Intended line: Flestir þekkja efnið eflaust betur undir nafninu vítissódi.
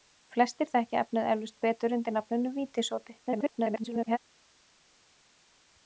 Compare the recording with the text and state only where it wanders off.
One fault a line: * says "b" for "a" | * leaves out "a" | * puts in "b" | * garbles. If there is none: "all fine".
* garbles